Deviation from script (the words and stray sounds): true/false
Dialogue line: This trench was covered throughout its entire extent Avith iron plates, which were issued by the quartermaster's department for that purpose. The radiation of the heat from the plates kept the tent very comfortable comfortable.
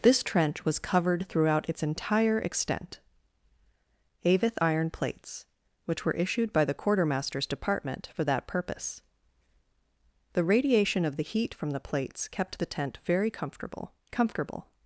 false